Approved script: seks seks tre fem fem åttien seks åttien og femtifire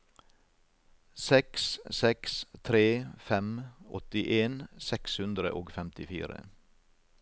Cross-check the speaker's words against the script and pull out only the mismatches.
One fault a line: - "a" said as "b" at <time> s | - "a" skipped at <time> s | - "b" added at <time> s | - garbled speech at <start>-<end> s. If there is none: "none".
- "fem" skipped at 3.5 s
- "åttien" said as "hundre" at 5.2 s